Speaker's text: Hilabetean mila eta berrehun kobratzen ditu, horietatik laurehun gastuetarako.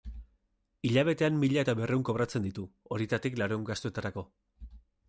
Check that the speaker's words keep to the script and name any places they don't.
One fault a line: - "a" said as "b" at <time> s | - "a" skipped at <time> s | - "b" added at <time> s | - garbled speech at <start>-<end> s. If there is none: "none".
none